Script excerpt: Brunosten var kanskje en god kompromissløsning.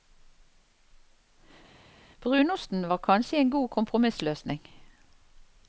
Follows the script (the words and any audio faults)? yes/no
yes